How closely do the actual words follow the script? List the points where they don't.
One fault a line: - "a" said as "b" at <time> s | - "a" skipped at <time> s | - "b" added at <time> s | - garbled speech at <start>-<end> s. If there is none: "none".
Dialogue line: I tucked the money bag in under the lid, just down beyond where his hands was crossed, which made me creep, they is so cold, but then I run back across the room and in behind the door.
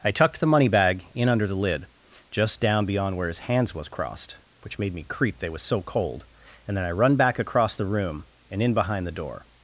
- "is" said as "was" at 5.5 s
- "but" said as "and" at 6.7 s